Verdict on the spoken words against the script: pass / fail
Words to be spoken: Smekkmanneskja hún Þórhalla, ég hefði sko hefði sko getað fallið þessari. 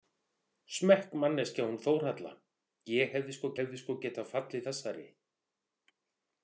pass